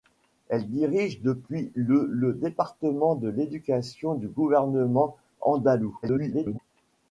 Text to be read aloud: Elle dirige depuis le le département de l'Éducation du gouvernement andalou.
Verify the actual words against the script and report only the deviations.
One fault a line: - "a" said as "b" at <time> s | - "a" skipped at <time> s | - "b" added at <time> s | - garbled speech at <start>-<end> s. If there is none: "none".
- garbled speech at 6.0-6.6 s